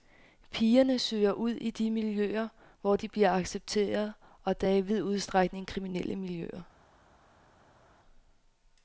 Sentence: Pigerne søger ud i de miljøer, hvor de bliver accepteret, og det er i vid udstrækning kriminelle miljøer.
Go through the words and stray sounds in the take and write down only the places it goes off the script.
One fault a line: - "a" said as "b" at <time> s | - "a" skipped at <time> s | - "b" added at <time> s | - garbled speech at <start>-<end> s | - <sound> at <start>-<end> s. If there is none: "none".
none